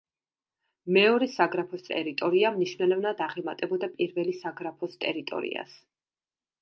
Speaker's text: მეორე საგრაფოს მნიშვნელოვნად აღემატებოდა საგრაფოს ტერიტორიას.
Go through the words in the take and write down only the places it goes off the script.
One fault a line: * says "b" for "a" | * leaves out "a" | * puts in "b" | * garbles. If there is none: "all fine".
* puts in "ტერიტორია"
* puts in "პირველი"